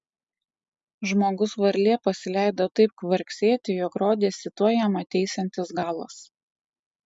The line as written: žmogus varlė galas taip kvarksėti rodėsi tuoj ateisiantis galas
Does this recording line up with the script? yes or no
no